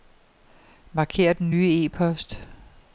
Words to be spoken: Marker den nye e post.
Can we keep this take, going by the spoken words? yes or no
yes